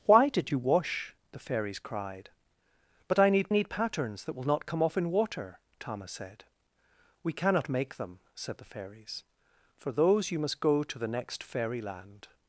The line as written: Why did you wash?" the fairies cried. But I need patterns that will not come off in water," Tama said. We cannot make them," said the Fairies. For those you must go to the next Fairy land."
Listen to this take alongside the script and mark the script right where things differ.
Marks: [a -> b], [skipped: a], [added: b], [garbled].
Why did you wash?" the fairies cried. But I need [added: need] patterns that will not come off in water," Tama said. We cannot make them," said the Fairies. For those you must go to the next Fairy land."